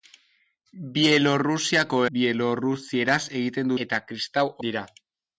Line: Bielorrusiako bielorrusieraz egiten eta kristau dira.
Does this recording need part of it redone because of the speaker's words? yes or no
no